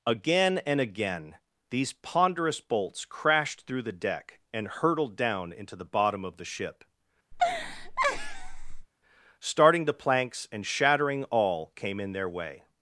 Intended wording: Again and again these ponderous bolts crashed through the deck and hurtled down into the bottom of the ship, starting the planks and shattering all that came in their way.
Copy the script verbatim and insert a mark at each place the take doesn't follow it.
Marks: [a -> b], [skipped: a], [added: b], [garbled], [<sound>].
Again and again these ponderous bolts crashed through the deck and hurtled down into the bottom of the ship, [laugh] starting the planks and shattering all [skipped: that] came in their way.